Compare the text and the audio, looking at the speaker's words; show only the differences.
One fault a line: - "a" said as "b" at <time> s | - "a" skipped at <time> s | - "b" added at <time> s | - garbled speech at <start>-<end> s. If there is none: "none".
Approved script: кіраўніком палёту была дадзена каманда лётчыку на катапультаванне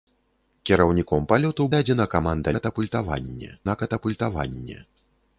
- "была" skipped at 1.7 s
- "лётчыку" said as "катапультаванне" at 2.6 s